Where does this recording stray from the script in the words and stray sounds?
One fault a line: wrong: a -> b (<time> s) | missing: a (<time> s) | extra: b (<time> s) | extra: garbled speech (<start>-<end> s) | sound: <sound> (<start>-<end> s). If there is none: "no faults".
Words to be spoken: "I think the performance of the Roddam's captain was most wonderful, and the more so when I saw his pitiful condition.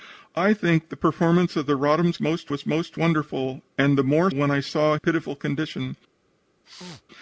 wrong: captain -> most (2.2 s)
missing: so (4.3 s)
missing: his (5.0 s)
sound: sneeze (6.6-7.0 s)